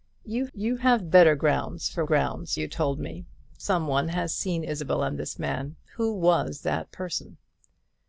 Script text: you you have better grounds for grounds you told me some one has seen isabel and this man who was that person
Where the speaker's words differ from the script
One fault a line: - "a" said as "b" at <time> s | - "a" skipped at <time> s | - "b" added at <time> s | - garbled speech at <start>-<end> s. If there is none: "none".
none